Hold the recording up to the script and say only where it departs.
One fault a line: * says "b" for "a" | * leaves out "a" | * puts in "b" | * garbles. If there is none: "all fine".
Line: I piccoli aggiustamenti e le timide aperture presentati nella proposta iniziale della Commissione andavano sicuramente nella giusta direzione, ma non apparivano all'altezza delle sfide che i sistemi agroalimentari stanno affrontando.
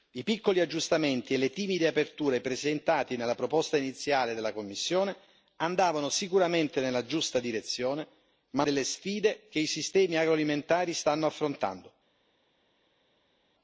* leaves out "non apparivano all'altezza"